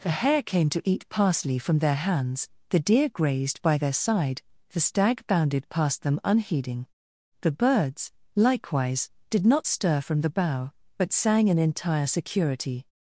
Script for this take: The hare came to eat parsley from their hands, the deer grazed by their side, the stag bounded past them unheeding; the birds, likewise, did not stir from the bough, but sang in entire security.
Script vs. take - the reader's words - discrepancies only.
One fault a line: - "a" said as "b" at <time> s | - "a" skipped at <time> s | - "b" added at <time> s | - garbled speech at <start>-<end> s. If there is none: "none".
none